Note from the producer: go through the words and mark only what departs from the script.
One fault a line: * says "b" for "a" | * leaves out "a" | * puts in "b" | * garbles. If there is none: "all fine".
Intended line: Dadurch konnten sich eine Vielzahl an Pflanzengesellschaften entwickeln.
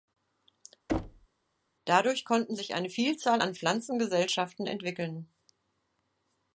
all fine